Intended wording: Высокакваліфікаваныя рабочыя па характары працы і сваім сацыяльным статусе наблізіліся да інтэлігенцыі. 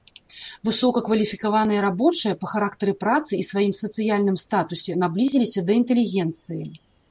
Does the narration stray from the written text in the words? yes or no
no